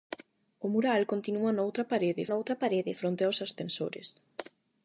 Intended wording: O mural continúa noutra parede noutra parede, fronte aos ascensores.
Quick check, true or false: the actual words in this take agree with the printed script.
true